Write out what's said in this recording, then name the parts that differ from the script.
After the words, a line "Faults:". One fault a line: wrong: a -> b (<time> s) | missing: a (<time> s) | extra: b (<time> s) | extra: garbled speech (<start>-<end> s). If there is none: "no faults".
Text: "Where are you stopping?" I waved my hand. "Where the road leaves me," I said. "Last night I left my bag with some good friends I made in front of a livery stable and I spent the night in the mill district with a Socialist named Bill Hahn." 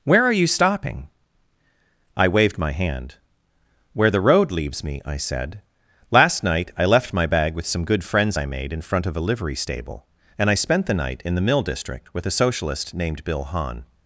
"Where are you stopping?" I waved my hand. "Where the road leaves me," I said. "Last night I left my bag with some good friends I made in front of a livery stable and I spent the night in the mill district with a Socialist named Bill Hahn."
Faults:
no faults